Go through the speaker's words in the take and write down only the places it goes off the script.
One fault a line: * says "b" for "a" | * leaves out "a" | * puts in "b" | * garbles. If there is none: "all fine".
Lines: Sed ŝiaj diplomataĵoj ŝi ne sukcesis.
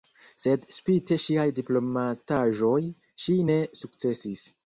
* puts in "spite"